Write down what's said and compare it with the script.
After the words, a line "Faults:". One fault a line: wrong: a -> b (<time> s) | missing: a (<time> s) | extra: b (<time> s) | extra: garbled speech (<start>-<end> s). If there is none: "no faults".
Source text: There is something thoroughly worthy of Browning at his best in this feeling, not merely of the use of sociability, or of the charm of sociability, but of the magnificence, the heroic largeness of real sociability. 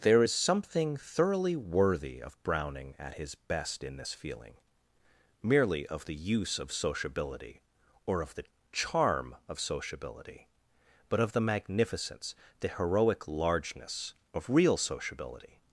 There is something thoroughly worthy of Browning at his best in this feeling, merely of the use of sociability, or of the charm of sociability, but of the magnificence, the heroic largeness of real sociability.
Faults:
missing: not (4.5 s)